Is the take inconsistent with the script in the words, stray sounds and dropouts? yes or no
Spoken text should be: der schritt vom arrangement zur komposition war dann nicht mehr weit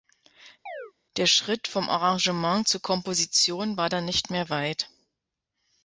yes